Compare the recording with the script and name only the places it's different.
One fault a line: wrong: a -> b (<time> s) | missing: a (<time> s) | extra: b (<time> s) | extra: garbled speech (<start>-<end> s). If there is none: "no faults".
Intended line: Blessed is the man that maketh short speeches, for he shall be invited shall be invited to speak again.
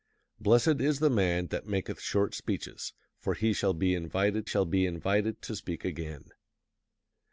no faults